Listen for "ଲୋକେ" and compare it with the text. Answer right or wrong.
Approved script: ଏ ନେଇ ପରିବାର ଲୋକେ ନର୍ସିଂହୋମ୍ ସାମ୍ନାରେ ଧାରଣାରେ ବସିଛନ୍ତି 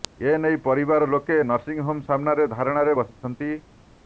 right